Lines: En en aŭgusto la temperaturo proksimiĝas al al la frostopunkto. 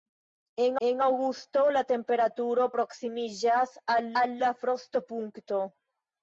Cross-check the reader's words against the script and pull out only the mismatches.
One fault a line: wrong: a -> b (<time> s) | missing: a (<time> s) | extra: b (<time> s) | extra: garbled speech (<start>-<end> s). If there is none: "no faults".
no faults